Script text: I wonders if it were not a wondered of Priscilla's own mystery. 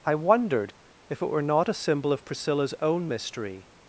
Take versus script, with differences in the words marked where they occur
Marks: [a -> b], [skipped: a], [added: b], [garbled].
I [wonders -> wondered] if it were not a [wondered -> symbol] of Priscilla's own mystery.